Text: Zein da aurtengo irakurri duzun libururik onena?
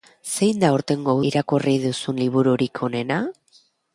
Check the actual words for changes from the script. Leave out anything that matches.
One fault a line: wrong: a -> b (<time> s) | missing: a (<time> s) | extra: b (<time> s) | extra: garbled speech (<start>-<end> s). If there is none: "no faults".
no faults